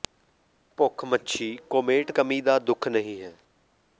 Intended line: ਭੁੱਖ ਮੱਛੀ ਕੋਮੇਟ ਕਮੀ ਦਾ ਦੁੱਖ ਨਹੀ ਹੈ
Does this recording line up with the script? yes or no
yes